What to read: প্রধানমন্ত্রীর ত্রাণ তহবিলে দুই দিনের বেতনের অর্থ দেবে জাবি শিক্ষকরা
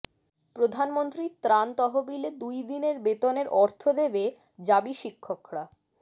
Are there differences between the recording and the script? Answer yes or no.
no